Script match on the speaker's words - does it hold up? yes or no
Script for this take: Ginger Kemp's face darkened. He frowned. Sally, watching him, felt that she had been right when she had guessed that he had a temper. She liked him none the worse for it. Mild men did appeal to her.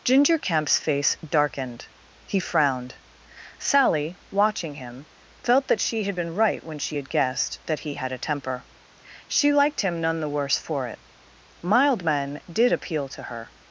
yes